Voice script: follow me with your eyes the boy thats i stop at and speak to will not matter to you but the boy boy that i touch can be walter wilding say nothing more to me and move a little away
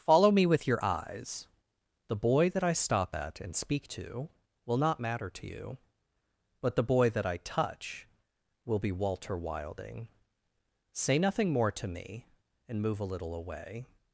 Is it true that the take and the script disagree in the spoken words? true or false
true